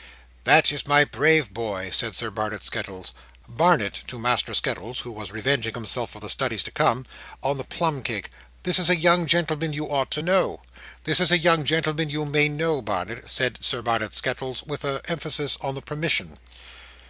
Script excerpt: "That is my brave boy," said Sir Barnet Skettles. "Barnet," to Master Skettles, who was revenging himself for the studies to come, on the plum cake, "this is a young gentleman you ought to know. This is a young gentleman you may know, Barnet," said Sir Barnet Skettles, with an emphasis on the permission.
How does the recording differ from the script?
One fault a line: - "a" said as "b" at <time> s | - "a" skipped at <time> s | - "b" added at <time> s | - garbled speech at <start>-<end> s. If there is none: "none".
none